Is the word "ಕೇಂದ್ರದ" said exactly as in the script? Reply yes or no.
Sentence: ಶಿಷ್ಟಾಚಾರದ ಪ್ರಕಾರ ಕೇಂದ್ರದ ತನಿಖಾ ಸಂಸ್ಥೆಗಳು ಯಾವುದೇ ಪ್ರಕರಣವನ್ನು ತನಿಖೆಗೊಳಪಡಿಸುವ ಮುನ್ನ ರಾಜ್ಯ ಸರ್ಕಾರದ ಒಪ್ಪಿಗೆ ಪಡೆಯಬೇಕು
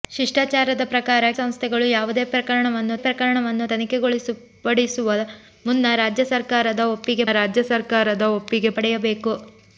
no